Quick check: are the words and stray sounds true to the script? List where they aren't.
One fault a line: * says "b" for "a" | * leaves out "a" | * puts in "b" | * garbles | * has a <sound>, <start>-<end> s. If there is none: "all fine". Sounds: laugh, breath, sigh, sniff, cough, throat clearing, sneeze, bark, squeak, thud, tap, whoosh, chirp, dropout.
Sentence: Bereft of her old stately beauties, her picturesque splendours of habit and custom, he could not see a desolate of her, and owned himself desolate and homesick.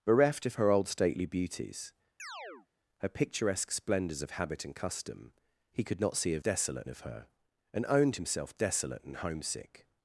* has a chirp, 2.2-2.7 s